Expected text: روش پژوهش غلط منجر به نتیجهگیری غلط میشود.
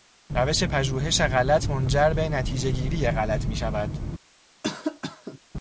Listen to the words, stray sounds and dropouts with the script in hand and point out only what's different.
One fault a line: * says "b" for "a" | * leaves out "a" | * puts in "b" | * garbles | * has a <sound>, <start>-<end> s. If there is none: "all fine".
* has a cough, 4.6-5.4 s